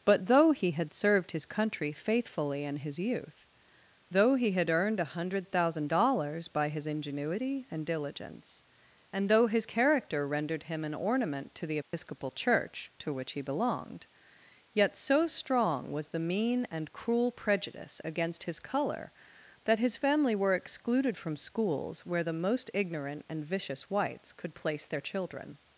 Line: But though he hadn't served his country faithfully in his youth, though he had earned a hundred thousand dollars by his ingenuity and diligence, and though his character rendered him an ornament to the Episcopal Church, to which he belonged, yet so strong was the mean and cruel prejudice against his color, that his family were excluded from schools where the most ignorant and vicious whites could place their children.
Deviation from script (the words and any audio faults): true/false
true